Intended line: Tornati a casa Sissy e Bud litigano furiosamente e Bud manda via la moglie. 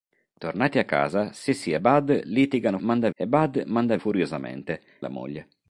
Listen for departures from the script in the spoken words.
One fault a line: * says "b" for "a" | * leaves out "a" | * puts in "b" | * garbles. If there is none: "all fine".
* says "manda" for "furiosamente"
* says "furiosamente" for "via"